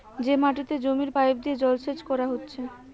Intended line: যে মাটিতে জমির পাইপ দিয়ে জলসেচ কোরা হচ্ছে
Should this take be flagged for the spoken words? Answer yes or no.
no